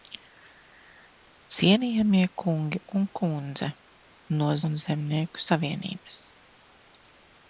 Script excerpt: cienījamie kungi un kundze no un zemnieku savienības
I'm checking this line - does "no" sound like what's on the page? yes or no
yes